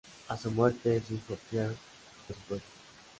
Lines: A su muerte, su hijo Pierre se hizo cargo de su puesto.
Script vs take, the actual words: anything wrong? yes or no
yes